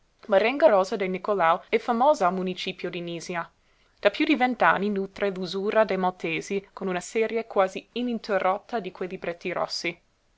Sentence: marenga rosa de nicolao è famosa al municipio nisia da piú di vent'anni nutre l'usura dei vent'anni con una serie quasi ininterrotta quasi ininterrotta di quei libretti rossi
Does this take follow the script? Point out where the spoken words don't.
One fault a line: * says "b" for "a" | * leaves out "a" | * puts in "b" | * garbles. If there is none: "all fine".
* puts in "di"
* says "maltesi" for "vent'anni"
* leaves out "quasi ininterrotta"